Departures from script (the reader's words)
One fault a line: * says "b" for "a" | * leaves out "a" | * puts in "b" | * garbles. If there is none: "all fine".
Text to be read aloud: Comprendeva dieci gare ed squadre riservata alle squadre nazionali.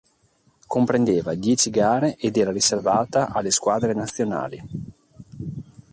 * says "era" for "squadre"